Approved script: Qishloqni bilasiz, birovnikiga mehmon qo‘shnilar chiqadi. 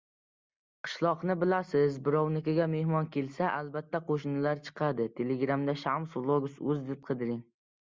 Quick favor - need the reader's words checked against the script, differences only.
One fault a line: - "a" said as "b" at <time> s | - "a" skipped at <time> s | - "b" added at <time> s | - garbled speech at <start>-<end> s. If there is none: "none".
- "kelsa albatta" added at 3.2 s